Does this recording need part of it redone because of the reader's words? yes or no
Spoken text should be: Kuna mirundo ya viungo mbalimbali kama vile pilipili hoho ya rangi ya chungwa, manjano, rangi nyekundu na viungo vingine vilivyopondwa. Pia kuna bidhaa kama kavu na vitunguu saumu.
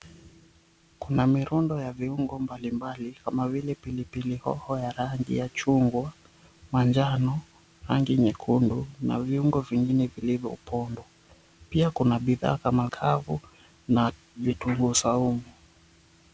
no